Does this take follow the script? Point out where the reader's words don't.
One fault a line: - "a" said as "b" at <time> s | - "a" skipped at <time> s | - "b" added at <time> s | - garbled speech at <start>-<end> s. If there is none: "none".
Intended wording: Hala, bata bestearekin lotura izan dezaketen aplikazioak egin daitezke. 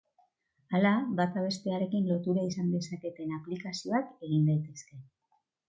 none